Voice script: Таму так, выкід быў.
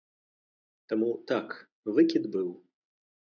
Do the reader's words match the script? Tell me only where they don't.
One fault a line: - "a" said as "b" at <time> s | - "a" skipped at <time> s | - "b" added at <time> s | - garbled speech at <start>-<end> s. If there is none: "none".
none